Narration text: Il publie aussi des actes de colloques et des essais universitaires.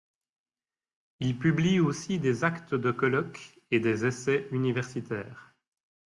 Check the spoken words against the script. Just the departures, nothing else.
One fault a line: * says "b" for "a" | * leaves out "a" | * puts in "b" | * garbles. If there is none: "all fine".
all fine